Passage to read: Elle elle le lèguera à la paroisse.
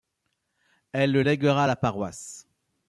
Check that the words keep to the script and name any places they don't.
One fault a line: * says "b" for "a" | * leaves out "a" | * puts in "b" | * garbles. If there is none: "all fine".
* leaves out "elle"